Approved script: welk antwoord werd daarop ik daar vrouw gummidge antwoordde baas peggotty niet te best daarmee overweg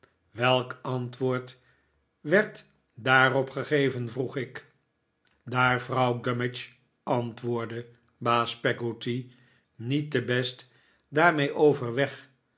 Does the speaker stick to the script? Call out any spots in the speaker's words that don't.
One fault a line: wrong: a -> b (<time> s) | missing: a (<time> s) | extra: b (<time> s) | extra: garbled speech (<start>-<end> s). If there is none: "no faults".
extra: gegeven vroeg (3.5 s)